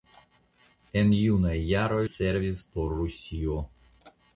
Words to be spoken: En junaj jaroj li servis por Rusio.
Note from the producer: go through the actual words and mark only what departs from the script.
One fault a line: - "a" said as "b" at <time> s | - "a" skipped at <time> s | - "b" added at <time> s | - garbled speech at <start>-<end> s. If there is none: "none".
- "li" skipped at 2.0 s